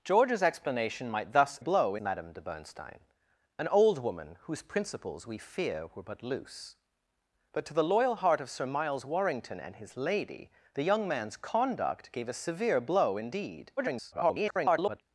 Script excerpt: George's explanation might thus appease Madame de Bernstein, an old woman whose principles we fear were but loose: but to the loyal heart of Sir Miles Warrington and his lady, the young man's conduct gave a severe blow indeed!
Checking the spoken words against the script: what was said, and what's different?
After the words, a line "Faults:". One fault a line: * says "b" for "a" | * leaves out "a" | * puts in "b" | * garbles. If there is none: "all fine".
George's explanation might thus blow Madame de Bernstein, an old woman whose principles we fear were but loose: but to the loyal heart of Sir Miles Warrington and his lady, the young man's conduct gave a severe blow indeed! [garbled]
Faults:
* says "blow" for "appease"
* garbles